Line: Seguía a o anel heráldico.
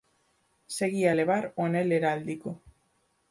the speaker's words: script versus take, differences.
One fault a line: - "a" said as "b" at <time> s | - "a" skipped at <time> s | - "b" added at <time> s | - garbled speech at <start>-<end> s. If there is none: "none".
- "levar" added at 1.1 s